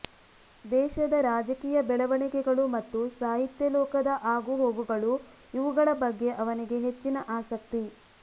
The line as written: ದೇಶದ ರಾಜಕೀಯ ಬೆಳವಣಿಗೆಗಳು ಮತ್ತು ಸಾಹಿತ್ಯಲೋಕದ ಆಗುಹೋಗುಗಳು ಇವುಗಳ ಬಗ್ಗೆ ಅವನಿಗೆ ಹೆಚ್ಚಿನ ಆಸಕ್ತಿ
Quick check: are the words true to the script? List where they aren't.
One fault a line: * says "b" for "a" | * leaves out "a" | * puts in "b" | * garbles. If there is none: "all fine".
all fine